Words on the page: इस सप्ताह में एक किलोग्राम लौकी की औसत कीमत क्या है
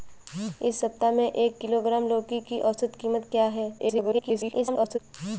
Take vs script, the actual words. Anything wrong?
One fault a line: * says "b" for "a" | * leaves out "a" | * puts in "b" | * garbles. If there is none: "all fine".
* garbles